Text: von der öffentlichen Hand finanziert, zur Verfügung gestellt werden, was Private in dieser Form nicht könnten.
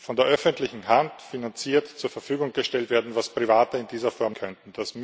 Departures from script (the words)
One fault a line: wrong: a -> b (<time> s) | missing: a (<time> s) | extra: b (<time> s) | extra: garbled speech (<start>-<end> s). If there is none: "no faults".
missing: nicht (4.4 s)